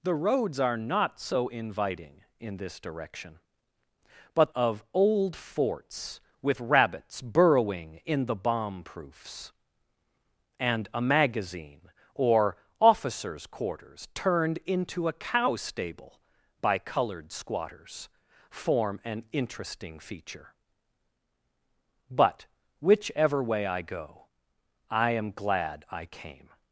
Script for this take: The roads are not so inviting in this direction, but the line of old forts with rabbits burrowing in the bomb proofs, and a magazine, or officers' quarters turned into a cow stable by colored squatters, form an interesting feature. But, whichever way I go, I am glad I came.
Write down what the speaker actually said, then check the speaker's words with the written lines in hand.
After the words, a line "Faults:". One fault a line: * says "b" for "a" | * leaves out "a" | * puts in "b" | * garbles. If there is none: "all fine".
The roads are not so inviting in this direction, but of old forts with rabbits burrowing in the bomb proofs, and a magazine, or officers' quarters turned into a cow stable by colored squatters, form an interesting feature. But, whichever way I go, I am glad I came.
Faults:
* leaves out "the line"